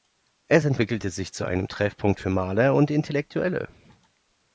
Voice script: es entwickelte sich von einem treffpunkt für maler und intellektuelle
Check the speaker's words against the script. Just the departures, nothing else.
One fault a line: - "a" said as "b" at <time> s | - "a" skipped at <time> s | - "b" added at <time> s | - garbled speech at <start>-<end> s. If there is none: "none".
- "von" said as "zu" at 1.3 s